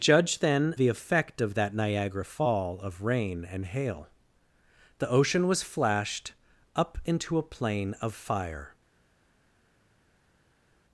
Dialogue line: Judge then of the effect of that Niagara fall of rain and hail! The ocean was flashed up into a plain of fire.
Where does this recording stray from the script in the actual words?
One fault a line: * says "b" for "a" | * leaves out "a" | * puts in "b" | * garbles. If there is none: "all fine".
* leaves out "of"